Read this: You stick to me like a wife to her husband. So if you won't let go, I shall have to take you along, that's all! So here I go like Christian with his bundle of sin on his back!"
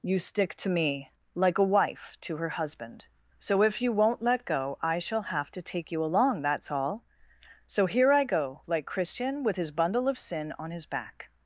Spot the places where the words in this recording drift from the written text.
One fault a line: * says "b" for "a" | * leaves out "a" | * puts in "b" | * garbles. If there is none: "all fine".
all fine